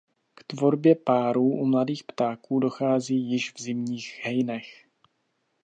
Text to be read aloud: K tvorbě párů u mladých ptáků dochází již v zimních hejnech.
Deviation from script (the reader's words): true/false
false